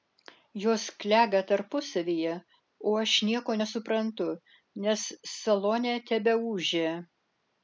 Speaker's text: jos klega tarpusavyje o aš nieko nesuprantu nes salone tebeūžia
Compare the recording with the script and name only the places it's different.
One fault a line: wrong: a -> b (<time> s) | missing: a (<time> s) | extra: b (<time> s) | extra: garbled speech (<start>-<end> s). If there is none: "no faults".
no faults